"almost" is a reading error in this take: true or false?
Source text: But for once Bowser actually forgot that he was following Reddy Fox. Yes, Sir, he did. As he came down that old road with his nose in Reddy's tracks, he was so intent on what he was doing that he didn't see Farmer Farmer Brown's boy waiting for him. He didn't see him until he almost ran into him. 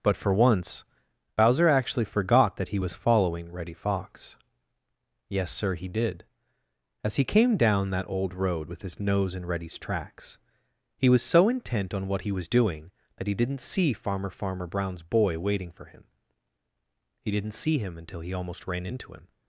false